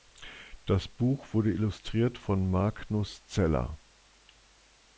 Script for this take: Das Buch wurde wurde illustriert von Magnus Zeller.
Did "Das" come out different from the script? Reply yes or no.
no